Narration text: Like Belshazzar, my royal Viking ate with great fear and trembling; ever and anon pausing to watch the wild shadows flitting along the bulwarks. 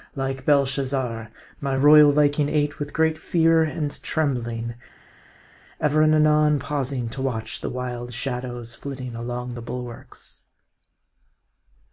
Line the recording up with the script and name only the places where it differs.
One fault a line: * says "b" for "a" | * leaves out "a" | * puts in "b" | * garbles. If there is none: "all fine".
all fine